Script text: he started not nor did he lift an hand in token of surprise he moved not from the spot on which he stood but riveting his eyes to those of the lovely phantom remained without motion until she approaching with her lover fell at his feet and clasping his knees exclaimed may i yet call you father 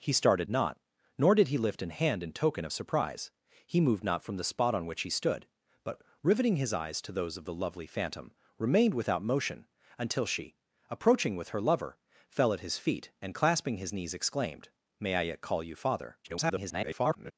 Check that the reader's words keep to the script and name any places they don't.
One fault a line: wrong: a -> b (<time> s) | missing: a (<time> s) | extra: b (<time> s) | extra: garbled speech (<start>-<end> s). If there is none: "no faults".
extra: garbled speech (16.2-17.3 s)